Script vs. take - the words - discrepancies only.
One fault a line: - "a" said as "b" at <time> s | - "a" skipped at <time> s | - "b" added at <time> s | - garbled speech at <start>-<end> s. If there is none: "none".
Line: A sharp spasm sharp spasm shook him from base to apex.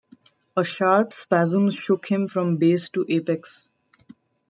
- "sharp spasm" skipped at 1.7 s